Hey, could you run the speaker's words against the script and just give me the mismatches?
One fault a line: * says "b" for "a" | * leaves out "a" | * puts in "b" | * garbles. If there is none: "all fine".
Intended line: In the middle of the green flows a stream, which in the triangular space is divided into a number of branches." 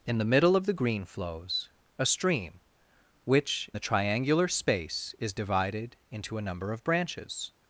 * leaves out "in"